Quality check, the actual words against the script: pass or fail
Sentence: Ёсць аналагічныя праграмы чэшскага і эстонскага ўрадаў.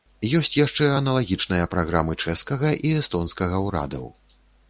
fail